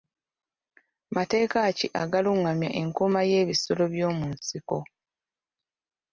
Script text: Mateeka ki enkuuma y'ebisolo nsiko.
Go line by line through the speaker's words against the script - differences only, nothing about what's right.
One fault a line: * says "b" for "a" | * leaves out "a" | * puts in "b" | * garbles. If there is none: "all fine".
* puts in "agalungamya"
* puts in "by'omu"